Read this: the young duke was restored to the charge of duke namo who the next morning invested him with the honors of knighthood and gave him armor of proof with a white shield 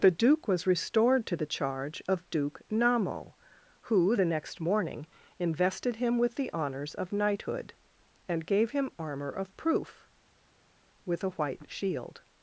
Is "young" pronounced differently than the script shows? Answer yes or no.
yes